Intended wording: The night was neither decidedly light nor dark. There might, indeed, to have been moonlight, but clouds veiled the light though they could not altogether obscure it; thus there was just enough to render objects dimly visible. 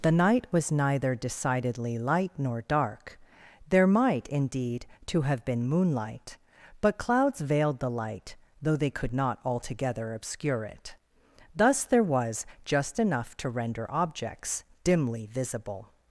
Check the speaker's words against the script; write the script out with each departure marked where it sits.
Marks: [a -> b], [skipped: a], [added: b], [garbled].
The night was neither decidedly light nor dark. There might, indeed, to have been moonlight, but clouds veiled the light though they could not altogether obscure it; thus there was just enough to render objects dimly visible.